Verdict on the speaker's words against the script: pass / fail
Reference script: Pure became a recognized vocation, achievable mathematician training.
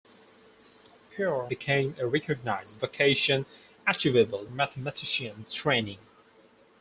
pass